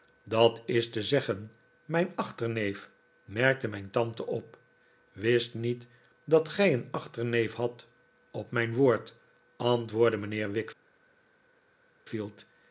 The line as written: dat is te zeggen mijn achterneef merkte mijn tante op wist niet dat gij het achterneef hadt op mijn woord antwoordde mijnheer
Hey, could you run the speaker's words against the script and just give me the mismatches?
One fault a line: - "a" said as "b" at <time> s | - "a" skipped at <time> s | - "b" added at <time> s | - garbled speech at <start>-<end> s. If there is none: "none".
- "het" said as "een" at 6.7 s